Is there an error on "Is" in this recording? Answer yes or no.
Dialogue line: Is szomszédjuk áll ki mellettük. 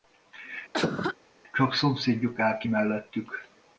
yes